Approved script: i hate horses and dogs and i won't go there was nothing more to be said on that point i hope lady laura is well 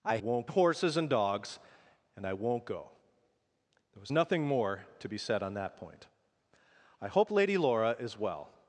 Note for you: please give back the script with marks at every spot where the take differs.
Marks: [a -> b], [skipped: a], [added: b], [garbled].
i [hate -> won't] horses and dogs and i won't go there was nothing more to be said on that point i hope lady laura is well